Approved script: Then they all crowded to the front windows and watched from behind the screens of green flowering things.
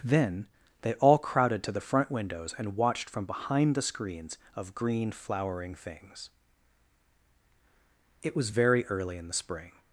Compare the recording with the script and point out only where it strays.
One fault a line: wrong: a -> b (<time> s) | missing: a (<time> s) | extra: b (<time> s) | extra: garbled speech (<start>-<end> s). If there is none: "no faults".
extra: It was very early in the spring (8.2 s)